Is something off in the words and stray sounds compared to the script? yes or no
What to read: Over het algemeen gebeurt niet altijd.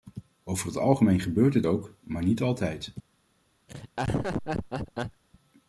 yes